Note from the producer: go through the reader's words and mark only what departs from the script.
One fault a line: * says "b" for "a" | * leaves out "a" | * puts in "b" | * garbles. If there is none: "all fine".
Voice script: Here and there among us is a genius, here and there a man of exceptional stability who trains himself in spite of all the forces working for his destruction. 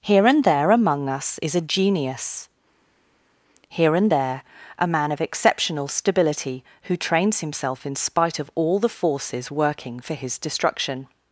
all fine